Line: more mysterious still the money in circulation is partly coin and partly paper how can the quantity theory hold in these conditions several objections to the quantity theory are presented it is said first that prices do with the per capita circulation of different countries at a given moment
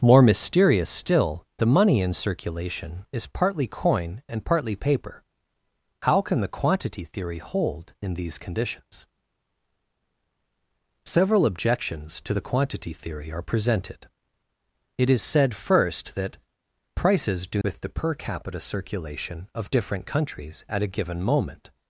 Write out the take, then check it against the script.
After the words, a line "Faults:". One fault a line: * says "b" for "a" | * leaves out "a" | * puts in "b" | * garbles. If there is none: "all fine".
more mysterious still the money in circulation is partly coin and partly paper how can the quantity theory hold in these conditions several objections to the quantity theory are presented it is said first that prices do with the per capita circulation of different countries at a given moment
Faults:
all fine